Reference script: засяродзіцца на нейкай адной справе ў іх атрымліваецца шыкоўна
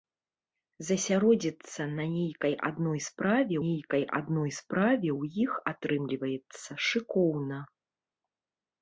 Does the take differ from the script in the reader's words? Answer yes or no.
yes